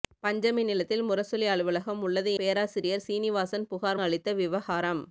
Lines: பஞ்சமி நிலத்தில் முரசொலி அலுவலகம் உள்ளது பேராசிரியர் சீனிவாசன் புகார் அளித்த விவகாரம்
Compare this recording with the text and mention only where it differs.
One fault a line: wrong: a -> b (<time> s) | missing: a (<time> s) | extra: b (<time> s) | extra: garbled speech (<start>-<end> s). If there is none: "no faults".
no faults